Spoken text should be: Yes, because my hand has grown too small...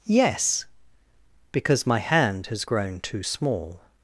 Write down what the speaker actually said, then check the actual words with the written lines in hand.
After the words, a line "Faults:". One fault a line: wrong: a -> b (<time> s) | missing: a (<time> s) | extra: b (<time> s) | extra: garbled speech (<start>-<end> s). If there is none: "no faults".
Yes, because my hand has grown too small...
Faults:
no faults